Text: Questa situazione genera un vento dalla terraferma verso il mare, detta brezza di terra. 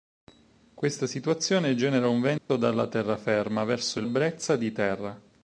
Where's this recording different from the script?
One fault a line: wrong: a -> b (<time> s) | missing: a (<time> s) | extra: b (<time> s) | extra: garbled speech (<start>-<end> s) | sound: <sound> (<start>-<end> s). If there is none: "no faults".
sound: dropout (2.4-2.5 s)
missing: mare detta (4.1 s)